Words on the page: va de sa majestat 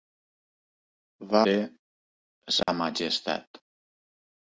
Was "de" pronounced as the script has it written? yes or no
yes